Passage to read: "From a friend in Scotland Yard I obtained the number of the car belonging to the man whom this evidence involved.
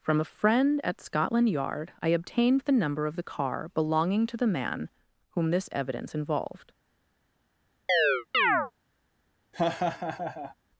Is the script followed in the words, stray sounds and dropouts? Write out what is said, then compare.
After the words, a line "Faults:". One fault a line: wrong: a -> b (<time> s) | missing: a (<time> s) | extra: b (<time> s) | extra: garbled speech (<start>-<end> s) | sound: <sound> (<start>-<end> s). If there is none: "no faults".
"From a friend at Scotland Yard I obtained the number of the car belonging to the man whom this evidence involved.
Faults:
wrong: in -> at (0.8 s)
sound: chirp (7.9-8.7 s)
sound: laugh (9.5-10.6 s)